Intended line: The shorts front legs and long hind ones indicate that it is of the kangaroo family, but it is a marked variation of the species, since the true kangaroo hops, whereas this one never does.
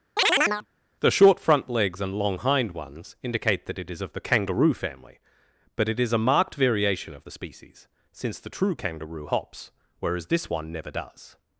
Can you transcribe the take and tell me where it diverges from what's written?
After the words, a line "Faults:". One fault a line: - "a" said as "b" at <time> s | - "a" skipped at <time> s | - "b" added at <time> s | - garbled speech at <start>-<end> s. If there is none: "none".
The short front legs and long hind ones indicate that it is of the kangaroo family, but it is a marked variation of the species, since the true kangaroo hops, whereas this one never does.
Faults:
- "shorts" said as "short" at 1.1 s